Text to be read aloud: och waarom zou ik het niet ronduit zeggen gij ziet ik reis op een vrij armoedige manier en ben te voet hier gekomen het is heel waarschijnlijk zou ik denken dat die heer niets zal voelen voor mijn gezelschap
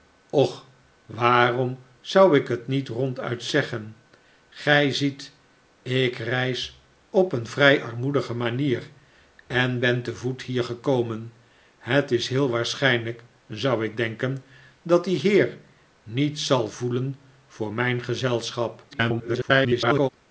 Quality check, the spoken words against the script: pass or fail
fail